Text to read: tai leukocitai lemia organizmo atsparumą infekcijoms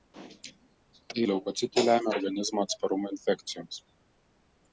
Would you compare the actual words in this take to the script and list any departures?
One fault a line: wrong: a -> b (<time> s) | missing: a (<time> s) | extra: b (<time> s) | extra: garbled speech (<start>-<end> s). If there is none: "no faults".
no faults